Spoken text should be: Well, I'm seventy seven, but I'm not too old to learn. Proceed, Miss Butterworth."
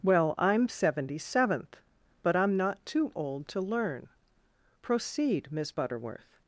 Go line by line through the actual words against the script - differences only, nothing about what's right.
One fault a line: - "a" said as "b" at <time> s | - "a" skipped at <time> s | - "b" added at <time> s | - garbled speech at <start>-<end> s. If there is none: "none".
- "seven" said as "seventh" at 1.2 s